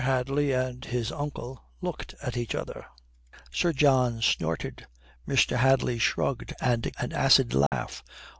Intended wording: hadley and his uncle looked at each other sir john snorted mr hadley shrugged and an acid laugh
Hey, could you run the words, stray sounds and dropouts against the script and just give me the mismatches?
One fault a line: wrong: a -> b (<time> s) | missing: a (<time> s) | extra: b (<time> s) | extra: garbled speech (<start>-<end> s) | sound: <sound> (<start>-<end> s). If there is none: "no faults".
sound: dropout (7.7-7.7 s)